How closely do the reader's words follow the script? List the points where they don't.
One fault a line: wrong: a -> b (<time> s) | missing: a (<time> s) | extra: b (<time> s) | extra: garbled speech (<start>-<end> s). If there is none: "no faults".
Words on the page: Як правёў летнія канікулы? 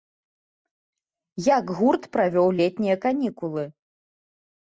extra: гурт (1.8 s)